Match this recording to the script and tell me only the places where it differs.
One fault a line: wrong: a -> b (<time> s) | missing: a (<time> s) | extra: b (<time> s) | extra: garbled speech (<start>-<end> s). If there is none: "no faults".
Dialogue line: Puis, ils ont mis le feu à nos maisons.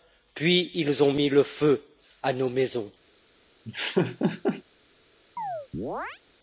no faults